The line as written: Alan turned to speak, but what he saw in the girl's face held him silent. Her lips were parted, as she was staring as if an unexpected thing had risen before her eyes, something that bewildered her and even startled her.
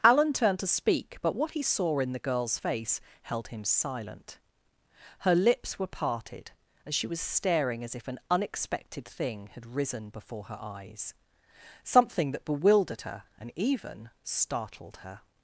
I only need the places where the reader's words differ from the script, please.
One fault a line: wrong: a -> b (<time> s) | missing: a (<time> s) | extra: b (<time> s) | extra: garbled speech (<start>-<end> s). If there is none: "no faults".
no faults